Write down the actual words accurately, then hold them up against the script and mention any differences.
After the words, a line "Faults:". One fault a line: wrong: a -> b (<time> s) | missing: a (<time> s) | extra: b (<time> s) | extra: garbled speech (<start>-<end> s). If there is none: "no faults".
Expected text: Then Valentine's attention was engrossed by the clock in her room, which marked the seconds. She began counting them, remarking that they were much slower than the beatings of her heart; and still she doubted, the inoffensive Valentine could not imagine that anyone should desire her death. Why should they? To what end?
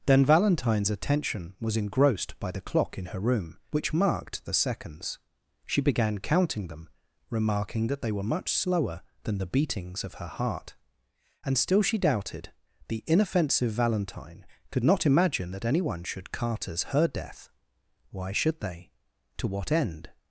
Then Valentine's attention was engrossed by the clock in her room, which marked the seconds. She began counting them, remarking that they were much slower than the beatings of her heart; and still she doubted, the inoffensive Valentine could not imagine that anyone should carters her death. Why should they? To what end?
Faults:
wrong: desire -> carters (16.3 s)